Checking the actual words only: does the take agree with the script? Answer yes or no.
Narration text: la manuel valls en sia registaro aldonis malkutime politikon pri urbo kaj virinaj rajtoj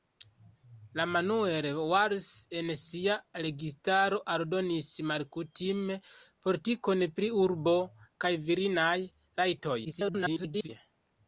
no